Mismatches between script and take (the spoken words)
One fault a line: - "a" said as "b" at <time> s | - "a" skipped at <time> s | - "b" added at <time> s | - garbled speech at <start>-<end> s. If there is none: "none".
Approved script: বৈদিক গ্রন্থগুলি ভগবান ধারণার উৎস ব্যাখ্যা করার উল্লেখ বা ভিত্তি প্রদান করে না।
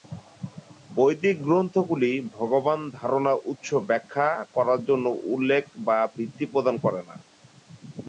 - "জন্য" added at 4.8 s